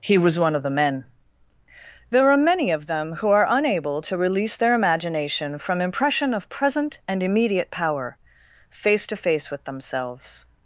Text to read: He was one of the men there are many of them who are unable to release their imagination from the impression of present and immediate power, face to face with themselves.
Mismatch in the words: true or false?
true